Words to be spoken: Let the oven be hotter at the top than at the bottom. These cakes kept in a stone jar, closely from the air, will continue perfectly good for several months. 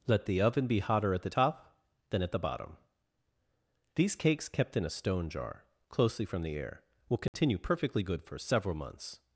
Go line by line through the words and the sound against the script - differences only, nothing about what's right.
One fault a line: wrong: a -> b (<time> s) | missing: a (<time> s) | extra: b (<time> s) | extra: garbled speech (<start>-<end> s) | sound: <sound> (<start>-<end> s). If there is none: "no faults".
sound: dropout (7.3-7.3 s)